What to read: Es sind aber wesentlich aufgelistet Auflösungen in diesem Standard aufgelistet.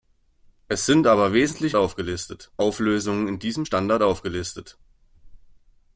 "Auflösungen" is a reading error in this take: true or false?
false